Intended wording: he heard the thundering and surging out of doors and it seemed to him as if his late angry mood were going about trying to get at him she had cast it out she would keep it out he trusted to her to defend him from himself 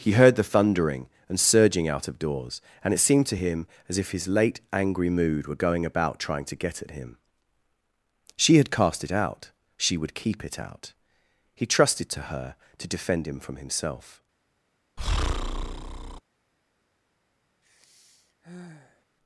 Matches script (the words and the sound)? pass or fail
fail